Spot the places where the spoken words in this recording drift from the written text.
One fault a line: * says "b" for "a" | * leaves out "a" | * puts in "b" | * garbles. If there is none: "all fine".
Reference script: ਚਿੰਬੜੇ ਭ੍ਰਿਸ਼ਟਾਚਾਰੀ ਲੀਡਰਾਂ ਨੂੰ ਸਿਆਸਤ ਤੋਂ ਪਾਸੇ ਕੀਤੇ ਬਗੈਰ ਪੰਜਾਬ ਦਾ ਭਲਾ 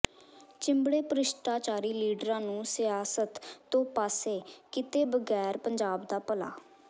all fine